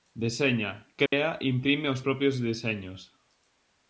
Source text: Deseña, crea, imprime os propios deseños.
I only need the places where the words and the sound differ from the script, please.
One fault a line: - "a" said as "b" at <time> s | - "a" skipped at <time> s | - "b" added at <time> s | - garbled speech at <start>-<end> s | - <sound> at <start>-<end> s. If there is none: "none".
- dropout at 1.1-1.1 s